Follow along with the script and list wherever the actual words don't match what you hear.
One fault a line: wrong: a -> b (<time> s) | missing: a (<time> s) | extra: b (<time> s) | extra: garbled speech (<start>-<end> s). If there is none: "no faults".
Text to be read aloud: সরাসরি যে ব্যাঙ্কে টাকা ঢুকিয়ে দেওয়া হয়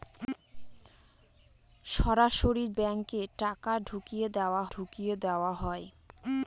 missing: যে (2.6 s)
extra: ঢুকিয়ে দেওয়া (4.7 s)